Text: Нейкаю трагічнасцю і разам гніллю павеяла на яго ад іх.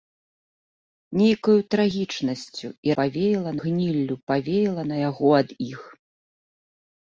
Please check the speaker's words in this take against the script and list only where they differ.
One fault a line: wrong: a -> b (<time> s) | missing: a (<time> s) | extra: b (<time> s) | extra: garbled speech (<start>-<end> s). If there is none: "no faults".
wrong: разам -> павеяла (3.0 s)